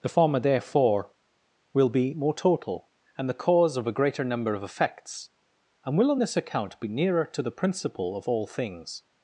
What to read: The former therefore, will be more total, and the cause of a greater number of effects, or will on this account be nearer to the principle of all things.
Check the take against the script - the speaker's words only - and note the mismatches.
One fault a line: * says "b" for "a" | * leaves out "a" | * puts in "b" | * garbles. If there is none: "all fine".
* says "and" for "or"